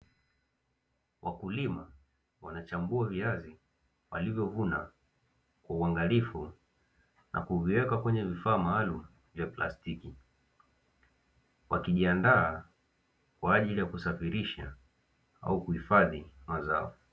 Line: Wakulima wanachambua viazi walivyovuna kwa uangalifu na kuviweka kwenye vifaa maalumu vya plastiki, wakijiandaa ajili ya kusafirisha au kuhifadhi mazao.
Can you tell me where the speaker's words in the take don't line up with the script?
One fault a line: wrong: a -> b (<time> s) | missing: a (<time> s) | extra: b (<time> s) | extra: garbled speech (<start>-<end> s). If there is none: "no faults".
extra: kwa (13.4 s)